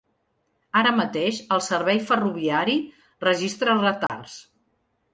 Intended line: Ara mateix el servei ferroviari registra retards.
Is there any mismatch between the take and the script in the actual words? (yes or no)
no